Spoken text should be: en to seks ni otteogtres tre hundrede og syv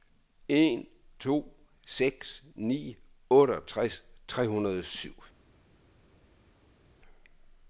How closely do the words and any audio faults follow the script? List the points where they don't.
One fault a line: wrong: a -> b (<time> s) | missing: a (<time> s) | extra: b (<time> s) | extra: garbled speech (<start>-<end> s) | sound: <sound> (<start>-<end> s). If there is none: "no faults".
no faults